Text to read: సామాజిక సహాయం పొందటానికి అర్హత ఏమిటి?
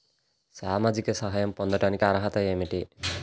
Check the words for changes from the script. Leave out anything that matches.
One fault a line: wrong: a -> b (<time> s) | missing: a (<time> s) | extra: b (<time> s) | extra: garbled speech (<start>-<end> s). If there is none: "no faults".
no faults